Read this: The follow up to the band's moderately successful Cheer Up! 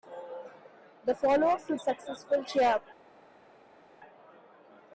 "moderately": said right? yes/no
no